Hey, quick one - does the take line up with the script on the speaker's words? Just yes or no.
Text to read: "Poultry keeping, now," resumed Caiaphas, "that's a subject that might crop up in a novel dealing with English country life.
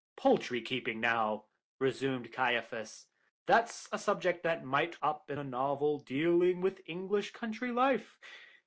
no